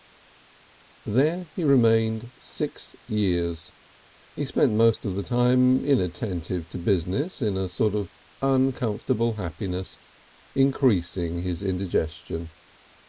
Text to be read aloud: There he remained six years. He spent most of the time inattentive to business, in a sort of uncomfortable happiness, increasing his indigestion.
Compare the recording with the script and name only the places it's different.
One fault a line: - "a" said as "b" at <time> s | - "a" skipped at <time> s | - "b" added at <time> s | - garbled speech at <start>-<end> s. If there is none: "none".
none